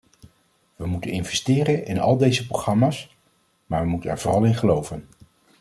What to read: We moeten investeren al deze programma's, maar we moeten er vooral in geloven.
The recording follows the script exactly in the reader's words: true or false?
false